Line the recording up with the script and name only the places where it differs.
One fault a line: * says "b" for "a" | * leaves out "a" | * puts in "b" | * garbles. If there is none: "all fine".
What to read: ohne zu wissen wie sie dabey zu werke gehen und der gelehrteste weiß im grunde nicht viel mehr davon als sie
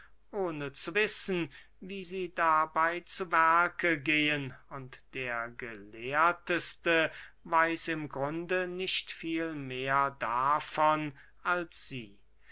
all fine